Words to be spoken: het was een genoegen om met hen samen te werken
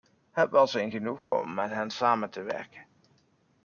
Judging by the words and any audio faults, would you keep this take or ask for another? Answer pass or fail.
fail